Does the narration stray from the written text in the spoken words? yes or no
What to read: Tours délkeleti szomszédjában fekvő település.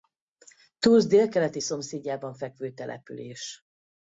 no